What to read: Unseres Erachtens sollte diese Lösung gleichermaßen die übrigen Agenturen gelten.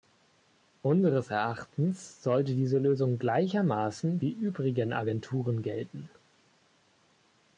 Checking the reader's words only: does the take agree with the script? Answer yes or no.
yes